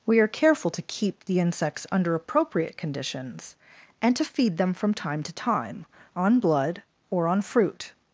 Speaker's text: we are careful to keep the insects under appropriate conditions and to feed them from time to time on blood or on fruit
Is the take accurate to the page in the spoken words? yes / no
yes